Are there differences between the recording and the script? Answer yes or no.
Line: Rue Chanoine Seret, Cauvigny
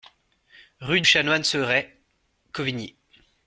no